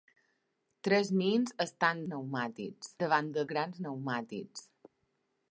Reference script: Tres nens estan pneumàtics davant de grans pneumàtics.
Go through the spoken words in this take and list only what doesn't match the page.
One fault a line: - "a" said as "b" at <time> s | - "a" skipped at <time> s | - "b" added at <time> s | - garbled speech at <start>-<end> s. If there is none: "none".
none